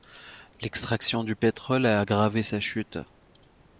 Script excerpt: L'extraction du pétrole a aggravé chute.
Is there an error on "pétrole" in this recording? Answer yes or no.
no